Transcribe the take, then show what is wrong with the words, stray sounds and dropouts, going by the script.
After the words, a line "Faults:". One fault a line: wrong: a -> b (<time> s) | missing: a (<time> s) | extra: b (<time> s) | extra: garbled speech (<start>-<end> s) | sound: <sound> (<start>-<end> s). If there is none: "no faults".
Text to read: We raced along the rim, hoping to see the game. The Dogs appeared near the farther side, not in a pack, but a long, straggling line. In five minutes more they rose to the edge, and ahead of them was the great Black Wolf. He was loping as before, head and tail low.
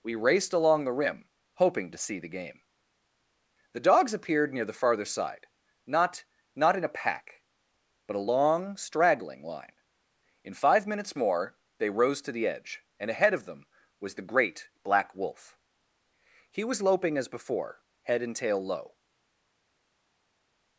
We raced along the rim, hoping to see the game. The Dogs appeared near the farther side, not not in a pack, but a long, straggling line. In five minutes more they rose to the edge, and ahead of them was the great Black Wolf. He was loping as before, head and tail low.
Faults:
extra: not (6.5 s)